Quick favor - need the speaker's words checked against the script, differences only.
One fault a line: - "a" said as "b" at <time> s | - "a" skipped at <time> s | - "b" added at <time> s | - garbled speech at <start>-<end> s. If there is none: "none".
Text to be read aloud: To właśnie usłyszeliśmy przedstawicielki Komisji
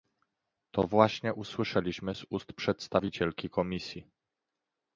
- "z ust" added at 2.1 s